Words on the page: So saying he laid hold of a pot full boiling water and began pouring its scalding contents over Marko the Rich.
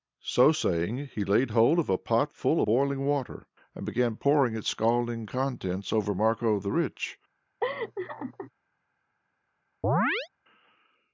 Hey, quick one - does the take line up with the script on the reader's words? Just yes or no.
yes